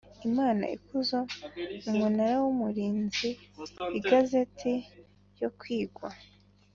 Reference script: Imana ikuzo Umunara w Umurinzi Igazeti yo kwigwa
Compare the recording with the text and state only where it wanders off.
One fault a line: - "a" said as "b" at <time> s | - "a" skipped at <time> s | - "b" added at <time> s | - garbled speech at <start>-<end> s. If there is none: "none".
none